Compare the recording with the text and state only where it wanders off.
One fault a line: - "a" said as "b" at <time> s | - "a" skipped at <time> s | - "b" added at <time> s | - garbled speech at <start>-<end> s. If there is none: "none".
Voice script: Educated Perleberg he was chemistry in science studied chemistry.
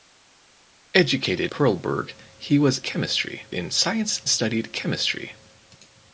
none